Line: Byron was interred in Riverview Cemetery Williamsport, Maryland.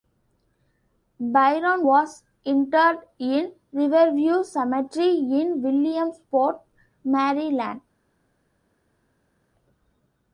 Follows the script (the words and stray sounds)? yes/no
no